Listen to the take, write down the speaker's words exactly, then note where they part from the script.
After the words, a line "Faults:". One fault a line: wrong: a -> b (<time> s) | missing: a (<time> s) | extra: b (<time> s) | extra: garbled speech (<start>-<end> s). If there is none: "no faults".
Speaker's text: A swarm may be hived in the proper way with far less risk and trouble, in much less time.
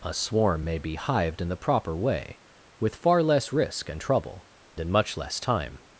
A swarm may be hived in the proper way with far less risk and trouble, in much less time.
Faults:
no faults